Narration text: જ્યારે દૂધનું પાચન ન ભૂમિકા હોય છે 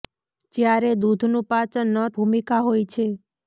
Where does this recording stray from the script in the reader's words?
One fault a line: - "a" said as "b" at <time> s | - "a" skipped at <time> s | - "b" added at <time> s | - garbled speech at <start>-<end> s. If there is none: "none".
none